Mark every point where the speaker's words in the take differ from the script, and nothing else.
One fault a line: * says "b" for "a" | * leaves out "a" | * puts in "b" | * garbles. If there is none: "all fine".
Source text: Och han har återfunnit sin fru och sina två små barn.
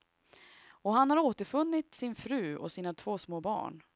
all fine